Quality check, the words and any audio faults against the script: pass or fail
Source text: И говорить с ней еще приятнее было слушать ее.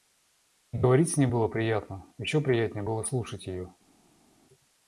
fail